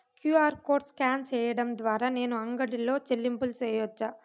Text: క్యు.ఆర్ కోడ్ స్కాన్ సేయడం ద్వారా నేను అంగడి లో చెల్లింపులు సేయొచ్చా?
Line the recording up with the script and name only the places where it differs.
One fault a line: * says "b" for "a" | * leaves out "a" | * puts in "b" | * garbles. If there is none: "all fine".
all fine